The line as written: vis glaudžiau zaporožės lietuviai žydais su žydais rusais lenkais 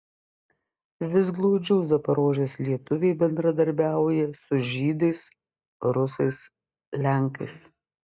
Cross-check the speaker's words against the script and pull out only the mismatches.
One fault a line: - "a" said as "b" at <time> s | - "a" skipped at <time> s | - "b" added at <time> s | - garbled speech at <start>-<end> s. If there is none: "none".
- "žydais" said as "bendradarbiauja" at 3.2 s